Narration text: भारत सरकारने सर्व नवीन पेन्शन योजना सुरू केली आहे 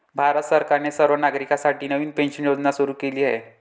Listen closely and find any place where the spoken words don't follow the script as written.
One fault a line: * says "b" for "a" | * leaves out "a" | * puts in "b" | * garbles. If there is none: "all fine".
* puts in "नागरिकांसाठी"